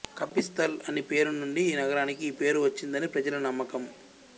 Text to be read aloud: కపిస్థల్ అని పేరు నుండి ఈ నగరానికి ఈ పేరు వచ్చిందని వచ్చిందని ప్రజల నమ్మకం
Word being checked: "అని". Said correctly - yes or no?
yes